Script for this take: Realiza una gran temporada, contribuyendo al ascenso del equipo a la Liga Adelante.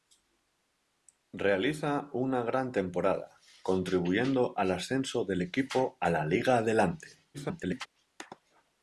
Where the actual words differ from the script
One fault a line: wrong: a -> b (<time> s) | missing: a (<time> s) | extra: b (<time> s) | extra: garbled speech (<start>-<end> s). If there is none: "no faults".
extra: garbled speech (7.3-7.9 s)